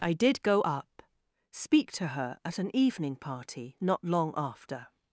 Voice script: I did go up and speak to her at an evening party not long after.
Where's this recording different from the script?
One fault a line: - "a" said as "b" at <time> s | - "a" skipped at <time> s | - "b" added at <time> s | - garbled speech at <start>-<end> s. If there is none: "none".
- "and" skipped at 1.0 s